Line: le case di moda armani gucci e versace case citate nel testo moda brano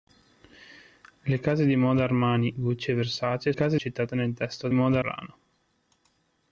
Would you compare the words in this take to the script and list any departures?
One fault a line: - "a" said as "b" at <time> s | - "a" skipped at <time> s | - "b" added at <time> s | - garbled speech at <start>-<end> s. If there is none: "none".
none